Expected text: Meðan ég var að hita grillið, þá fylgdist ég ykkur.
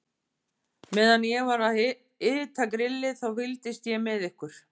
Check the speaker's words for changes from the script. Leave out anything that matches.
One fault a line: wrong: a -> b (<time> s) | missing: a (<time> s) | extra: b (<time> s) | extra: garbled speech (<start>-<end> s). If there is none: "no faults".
extra: með (4.1 s)